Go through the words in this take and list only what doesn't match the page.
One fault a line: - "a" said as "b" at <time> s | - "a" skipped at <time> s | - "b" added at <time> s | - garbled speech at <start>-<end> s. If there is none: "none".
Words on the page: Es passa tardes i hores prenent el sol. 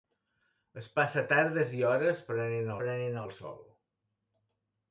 - "prenent" added at 2.8 s